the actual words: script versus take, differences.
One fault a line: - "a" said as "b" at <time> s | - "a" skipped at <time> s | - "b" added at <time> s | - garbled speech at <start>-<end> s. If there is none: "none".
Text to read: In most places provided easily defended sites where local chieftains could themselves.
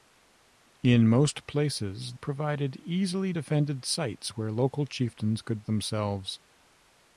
none